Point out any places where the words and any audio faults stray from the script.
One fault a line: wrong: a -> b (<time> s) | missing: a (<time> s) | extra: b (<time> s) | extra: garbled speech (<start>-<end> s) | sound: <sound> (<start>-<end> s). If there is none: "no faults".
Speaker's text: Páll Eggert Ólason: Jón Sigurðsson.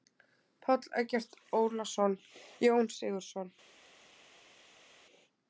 no faults